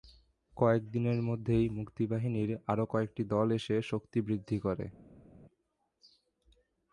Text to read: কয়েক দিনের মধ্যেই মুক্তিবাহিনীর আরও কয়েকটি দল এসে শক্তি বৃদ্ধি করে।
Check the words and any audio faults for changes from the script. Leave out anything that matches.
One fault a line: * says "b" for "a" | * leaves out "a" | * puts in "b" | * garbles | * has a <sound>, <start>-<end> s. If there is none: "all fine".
all fine